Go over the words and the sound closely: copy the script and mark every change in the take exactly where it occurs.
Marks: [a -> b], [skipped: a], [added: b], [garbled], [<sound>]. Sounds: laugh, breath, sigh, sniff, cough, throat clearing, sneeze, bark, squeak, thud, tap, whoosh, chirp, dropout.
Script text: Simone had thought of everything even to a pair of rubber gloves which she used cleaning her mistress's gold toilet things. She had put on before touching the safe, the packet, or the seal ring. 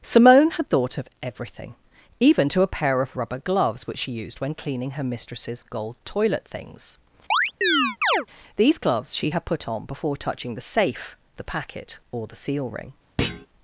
Simone had thought of everything even to a pair of rubber gloves which she used [added: when] cleaning her mistress's gold toilet things. [chirp] [added: These gloves] She had put on before touching the safe, the packet, or the seal ring. [thud]